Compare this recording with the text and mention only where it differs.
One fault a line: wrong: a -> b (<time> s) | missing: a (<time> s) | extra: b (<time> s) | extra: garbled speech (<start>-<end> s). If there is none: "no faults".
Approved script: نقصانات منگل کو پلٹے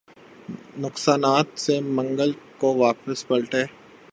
extra: سے (1.6 s)
extra: واپس (2.8 s)